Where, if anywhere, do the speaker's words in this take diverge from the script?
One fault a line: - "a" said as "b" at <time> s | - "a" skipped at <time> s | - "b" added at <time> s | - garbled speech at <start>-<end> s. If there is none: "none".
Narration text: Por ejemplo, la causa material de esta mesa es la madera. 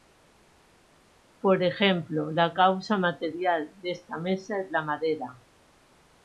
none